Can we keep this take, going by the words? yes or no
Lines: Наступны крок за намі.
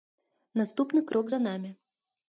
yes